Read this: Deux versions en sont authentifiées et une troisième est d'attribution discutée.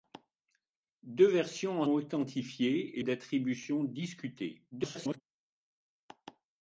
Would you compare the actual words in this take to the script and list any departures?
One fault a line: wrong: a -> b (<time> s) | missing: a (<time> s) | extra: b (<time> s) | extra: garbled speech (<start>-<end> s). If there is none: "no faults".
missing: sont (1.9 s)
missing: une troisième (3.0 s)
extra: garbled speech (4.7-5.2 s)